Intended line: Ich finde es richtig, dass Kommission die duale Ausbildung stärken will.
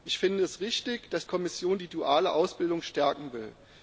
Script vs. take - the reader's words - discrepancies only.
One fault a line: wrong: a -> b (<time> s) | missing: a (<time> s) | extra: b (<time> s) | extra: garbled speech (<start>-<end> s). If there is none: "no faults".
no faults